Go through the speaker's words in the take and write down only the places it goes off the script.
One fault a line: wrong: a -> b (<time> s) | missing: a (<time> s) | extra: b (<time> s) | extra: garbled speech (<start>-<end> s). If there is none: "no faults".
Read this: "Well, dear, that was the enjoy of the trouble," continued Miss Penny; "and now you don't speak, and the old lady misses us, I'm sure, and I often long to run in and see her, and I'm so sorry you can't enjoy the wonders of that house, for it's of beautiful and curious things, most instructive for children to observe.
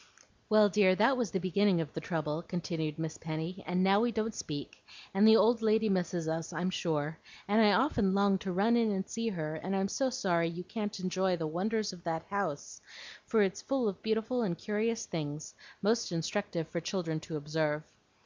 wrong: enjoy -> beginning (1.4 s)
wrong: you -> we (4.0 s)
extra: full (13.6 s)